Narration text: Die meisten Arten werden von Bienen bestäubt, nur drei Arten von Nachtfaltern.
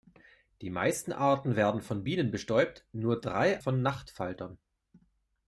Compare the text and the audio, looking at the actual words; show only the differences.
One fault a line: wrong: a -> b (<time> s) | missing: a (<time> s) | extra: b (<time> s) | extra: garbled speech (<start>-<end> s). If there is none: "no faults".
missing: Arten (3.6 s)